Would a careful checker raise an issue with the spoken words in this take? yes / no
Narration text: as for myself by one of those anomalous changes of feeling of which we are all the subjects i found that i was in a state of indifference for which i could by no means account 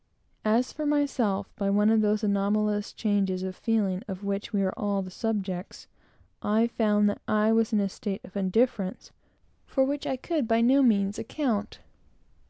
no